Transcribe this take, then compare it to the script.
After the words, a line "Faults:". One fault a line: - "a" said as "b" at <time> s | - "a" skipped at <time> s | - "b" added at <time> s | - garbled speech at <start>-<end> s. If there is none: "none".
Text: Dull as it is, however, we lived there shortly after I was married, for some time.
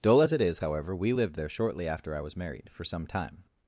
Dull as it is, however, we lived there shortly after I was married, for some time.
Faults:
none